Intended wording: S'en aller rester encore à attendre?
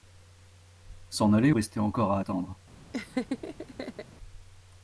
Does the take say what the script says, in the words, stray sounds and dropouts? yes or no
no